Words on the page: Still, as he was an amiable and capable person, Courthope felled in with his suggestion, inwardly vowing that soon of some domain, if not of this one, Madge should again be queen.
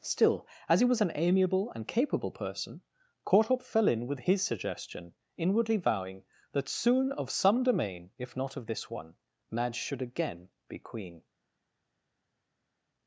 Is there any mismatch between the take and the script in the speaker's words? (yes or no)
yes